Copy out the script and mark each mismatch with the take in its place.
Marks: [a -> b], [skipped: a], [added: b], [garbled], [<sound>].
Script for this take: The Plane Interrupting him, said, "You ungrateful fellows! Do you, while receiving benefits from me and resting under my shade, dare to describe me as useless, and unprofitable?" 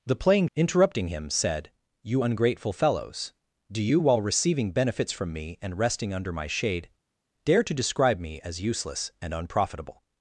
The Plane Interrupting him, said, "You ungrateful fellows! Do you, while receiving benefits from me and resting under my shade, dare to describe me as useless, and unprofitable?"